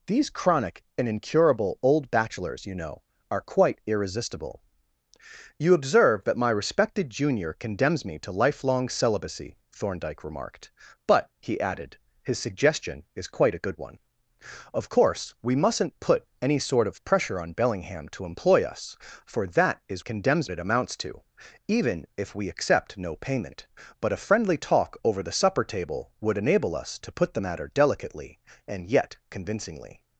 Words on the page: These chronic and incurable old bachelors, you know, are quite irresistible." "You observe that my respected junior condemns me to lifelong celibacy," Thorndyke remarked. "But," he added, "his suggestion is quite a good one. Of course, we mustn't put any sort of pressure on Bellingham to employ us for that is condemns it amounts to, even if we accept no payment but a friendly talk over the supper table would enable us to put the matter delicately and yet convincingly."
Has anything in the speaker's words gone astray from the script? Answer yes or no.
no